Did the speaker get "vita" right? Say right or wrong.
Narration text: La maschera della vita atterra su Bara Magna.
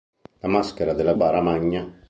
wrong